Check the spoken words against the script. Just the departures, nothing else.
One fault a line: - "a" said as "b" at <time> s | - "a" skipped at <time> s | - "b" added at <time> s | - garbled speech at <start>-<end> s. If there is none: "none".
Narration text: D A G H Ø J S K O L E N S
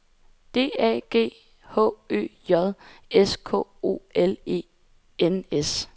none